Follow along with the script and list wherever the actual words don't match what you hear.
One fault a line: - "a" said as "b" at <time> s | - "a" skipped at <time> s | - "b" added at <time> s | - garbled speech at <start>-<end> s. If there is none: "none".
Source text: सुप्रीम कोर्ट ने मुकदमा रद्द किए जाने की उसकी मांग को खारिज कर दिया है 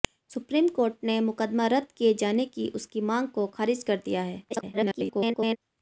- garbled speech at 4.5-5.6 s